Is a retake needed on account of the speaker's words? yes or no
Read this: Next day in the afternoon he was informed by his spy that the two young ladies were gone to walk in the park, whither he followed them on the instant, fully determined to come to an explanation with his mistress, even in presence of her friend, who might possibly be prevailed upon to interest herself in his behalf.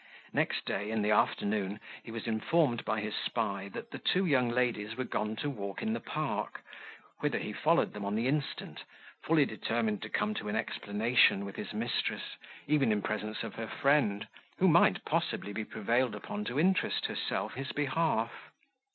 yes